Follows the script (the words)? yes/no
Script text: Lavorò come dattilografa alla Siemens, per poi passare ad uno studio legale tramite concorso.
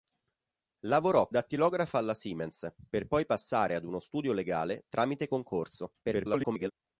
no